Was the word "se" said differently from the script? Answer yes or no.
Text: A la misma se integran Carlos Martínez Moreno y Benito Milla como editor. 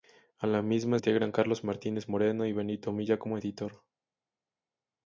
yes